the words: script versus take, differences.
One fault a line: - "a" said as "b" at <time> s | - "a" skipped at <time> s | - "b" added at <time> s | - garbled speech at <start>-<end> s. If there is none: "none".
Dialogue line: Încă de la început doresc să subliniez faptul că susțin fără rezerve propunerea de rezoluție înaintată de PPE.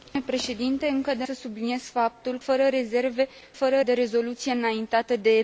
- "la început doresc" skipped at 1.2 s
- "că susțin" skipped at 2.4 s
- "propunerea" said as "fără" at 3.5 s